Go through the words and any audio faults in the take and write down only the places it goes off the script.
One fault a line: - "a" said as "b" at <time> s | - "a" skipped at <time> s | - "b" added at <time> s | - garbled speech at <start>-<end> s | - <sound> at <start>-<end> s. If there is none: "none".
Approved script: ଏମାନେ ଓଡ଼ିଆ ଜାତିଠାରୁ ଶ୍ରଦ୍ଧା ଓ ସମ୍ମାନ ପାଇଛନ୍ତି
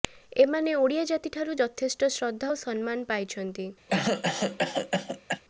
- "ଯଥେଷ୍ଟ" added at 1.6 s
- cough at 3.9-5.4 s